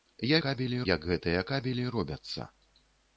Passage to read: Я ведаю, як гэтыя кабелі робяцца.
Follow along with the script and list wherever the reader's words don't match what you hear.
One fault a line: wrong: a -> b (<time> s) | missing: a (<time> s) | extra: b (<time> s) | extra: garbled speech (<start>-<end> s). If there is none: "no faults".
wrong: ведаю -> кабелі (0.5 s)